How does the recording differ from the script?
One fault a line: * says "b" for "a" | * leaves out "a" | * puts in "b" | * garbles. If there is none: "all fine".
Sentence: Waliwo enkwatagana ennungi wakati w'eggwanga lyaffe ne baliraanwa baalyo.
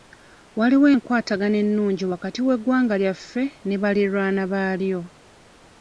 all fine